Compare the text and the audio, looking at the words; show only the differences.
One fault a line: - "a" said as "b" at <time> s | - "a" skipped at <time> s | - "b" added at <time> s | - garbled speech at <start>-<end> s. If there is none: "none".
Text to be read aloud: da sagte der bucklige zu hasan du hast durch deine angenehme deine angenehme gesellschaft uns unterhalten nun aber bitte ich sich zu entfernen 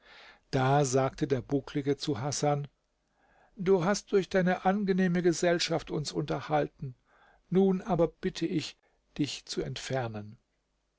- "deine angenehme" skipped at 5.2 s
- "sich" said as "dich" at 9.2 s